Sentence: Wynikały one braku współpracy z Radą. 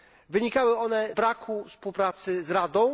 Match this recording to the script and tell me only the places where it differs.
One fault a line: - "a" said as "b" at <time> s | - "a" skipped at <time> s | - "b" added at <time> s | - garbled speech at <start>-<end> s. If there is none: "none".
none